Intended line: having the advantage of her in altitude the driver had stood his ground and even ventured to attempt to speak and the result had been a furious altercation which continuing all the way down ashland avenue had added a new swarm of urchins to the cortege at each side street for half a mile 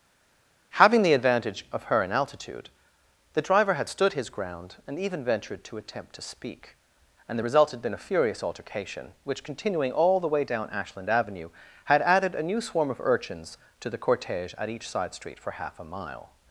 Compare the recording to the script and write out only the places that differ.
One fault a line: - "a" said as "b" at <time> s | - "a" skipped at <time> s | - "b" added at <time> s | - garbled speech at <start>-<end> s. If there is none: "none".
none